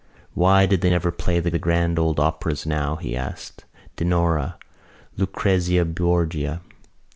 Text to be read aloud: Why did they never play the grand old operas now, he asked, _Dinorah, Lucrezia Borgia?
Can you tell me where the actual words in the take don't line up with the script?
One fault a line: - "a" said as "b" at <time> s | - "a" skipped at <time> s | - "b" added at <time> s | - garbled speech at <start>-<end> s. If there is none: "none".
- "the" added at 1.5 s